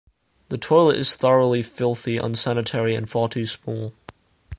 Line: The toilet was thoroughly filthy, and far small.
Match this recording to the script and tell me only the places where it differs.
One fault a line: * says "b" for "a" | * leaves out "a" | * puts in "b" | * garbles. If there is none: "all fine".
* says "is" for "was"
* puts in "unsanitary"
* puts in "too"